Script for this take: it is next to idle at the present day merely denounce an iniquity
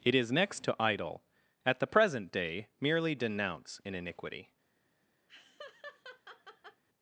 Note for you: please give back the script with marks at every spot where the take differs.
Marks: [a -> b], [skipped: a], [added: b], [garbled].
it is next to idle at the present day merely denounce an iniquity